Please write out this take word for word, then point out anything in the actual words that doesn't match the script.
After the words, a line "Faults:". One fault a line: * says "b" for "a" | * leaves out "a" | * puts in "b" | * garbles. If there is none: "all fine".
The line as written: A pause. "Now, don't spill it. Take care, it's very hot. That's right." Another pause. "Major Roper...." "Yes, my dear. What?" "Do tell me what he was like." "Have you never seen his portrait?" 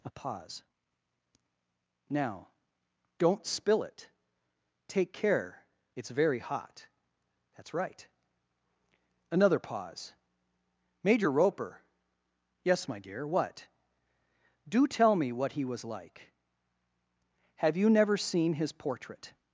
A pause. "Now, don't spill it. Take care, it's very hot. That's right." Another pause. "Major Roper...." "Yes, my dear. What?" "Do tell me what he was like." "Have you never seen his portrait?"
Faults:
all fine